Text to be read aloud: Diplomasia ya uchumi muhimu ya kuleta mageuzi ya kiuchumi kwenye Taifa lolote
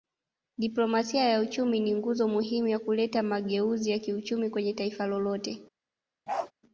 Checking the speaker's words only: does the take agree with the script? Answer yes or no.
no